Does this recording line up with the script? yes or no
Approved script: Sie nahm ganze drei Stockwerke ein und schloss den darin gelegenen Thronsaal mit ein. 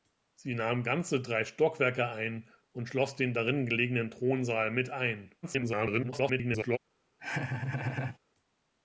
no